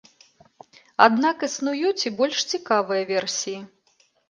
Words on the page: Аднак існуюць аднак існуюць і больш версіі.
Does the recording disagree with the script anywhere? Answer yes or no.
yes